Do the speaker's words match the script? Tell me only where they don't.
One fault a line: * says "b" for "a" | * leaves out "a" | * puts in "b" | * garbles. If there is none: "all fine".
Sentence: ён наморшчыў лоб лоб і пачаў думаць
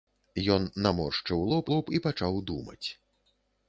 all fine